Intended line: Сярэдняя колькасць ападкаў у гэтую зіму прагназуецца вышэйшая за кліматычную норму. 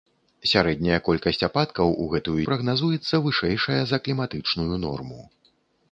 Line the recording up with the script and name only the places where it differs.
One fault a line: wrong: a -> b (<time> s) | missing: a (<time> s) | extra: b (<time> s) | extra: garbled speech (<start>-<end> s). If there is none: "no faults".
missing: зіму (2.4 s)